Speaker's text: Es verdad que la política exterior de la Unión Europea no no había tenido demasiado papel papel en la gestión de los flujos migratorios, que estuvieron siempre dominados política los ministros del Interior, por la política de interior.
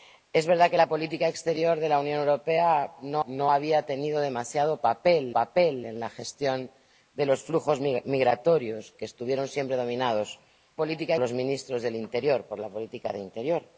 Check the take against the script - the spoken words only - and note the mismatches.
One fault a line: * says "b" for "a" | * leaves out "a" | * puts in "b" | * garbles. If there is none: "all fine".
all fine